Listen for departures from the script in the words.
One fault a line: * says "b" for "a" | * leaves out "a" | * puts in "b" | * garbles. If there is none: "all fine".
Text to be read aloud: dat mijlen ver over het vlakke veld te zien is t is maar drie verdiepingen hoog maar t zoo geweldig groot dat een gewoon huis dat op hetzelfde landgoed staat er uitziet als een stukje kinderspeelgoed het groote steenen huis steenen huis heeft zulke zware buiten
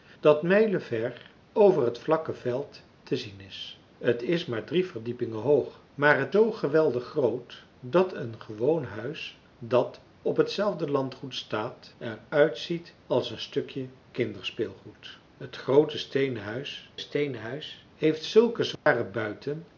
all fine